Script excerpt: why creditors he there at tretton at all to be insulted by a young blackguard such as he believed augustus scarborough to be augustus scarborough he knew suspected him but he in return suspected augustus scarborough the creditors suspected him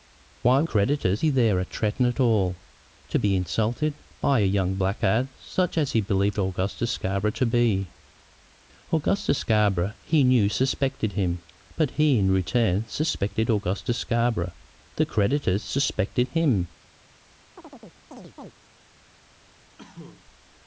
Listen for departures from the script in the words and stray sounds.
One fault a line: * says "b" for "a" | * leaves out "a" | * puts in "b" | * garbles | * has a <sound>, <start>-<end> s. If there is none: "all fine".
* has a chirp, 17.6-18.5 s
* has a cough, 19.8-20.3 s